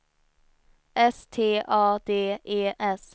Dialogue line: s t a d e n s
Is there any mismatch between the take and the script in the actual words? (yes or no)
yes